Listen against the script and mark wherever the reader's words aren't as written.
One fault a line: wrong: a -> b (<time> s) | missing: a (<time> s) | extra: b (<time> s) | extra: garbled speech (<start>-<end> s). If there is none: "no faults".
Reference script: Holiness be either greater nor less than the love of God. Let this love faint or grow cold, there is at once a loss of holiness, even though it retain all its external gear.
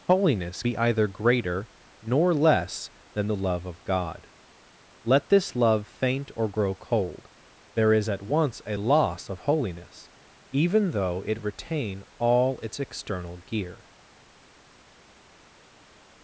no faults